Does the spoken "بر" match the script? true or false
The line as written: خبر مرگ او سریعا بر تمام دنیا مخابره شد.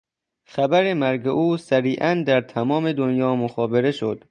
false